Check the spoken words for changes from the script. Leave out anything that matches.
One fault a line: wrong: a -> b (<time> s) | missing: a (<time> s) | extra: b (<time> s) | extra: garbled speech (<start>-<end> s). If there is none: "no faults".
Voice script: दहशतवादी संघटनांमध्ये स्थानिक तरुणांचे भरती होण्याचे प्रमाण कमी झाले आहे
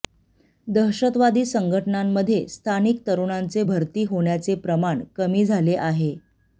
no faults